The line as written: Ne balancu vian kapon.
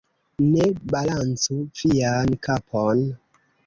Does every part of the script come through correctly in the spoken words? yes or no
yes